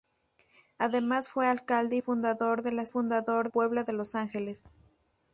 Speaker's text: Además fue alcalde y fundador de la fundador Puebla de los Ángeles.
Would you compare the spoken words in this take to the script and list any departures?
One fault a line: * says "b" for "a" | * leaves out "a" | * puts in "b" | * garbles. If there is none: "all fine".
all fine